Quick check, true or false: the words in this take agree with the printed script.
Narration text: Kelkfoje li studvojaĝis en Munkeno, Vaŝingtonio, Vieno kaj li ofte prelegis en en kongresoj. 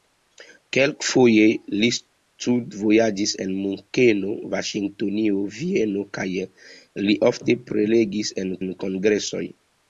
true